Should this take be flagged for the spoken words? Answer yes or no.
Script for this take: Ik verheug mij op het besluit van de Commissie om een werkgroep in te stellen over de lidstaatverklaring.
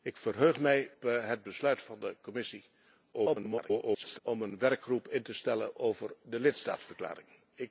yes